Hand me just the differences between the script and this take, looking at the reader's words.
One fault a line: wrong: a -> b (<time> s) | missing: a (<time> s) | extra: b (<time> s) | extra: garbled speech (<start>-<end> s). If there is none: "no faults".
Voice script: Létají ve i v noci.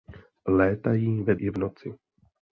no faults